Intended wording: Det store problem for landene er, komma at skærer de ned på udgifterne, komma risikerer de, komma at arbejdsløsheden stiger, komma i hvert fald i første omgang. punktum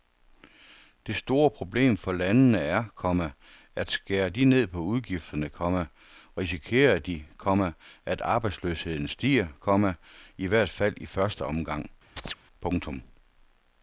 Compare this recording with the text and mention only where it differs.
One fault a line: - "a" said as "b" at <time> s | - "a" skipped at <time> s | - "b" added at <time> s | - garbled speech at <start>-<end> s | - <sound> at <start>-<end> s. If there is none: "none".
- chirp at 12.2-12.3 s